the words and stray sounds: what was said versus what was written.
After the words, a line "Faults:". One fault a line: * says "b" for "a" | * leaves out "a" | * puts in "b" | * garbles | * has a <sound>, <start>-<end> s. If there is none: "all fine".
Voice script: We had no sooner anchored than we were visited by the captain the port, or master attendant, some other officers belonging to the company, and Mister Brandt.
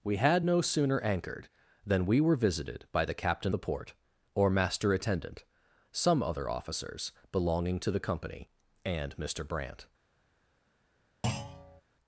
We had no sooner anchored than we were visited by the captain the port, or master attendant, some other officers belonging to the company, and Mister Brandt.
Faults:
* has a thud, 11.2-11.8 s